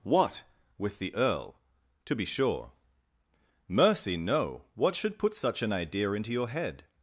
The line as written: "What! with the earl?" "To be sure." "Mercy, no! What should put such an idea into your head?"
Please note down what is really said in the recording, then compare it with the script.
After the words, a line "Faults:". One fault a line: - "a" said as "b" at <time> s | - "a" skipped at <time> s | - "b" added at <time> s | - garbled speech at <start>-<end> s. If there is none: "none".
"What! with the earl?" "To be sure." "Mercy, no! What should put such an idea into your head?"
Faults:
none